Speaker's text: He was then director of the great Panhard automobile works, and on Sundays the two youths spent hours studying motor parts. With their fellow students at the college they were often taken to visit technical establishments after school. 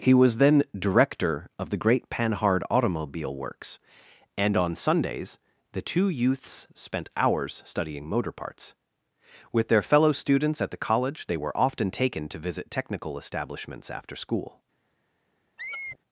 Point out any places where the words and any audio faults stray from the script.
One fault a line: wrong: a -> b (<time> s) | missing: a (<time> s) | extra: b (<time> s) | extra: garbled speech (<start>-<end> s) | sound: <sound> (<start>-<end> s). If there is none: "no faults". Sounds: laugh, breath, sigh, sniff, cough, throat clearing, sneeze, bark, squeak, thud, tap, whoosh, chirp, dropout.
sound: squeak (15.6-16.0 s)